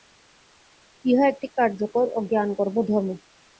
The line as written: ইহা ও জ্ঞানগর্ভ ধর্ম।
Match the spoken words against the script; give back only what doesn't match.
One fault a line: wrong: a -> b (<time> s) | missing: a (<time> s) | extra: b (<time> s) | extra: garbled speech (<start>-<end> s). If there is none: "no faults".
extra: একটি কার্যকর (1.3 s)